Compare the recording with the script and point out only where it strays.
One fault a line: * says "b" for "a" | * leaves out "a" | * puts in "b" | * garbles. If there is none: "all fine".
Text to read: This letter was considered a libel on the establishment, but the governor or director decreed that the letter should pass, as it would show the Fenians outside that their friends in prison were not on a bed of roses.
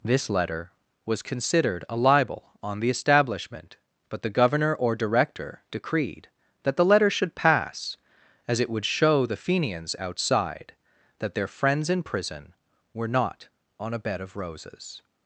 all fine